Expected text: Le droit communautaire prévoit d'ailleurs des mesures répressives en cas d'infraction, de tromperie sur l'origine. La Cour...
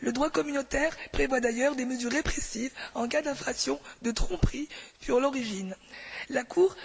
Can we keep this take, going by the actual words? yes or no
yes